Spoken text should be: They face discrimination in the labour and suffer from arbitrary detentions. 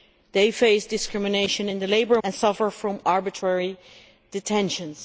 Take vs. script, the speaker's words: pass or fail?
pass